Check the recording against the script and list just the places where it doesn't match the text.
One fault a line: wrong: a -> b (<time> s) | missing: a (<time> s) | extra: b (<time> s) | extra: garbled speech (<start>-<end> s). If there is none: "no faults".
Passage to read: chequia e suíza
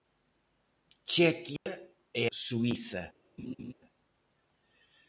no faults